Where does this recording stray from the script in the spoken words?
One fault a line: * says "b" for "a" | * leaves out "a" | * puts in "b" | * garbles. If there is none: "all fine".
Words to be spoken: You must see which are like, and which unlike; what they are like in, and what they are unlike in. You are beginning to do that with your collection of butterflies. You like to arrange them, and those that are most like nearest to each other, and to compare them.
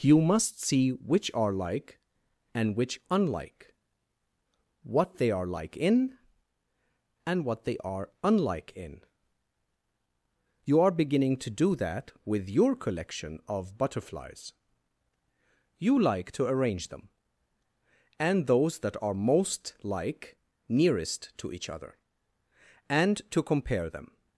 all fine